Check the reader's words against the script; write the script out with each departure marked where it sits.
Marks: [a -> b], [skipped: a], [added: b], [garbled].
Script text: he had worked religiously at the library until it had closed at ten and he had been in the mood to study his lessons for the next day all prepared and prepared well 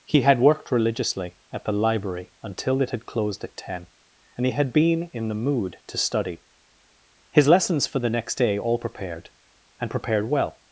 he had worked religiously at the library until it had closed at ten and he had been in the mood to study his lessons for the next day all prepared and prepared well